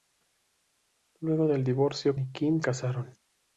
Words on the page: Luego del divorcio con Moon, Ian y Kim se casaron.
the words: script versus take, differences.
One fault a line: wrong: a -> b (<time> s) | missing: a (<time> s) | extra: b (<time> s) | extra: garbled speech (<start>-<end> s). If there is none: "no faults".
missing: con Moon Ian (2.1 s)
missing: se (2.6 s)